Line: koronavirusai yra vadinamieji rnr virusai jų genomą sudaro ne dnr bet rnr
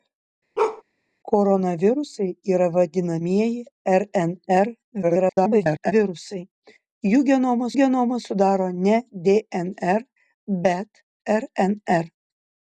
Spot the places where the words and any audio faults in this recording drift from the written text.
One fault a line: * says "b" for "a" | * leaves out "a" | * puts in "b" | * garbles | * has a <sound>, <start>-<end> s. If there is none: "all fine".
* has a bark, 0.6-0.8 s
* garbles
* puts in "genomą"